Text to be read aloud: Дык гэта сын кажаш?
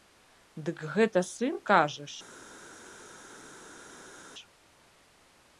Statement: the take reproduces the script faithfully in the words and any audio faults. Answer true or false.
true